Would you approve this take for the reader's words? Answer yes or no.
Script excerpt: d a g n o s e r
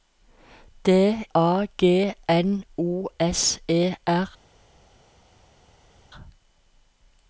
yes